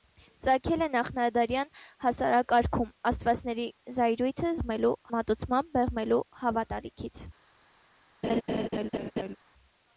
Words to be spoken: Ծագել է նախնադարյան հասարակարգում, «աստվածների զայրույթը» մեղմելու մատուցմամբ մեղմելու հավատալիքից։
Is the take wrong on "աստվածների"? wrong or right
right